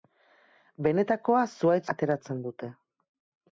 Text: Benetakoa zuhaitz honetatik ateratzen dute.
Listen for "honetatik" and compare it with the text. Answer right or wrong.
wrong